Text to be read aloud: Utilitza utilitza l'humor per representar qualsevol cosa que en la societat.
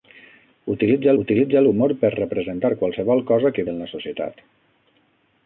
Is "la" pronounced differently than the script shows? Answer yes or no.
no